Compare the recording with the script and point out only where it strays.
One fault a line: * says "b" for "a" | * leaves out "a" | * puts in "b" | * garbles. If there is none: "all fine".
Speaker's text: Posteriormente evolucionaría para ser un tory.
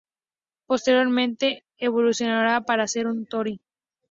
all fine